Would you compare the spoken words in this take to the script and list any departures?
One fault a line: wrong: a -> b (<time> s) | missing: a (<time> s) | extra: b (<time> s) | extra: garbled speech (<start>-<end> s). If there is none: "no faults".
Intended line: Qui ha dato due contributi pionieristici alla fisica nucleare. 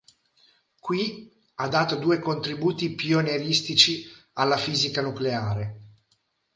no faults